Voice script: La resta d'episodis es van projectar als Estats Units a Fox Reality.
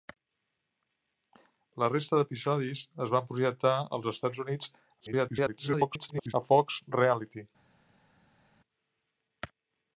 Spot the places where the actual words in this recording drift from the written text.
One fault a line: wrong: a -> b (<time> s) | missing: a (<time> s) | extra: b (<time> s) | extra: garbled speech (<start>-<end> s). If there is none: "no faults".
extra: garbled speech (5.0-6.3 s)